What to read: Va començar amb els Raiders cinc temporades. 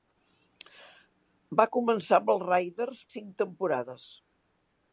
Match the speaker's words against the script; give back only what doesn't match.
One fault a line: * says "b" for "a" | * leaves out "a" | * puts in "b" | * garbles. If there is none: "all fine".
all fine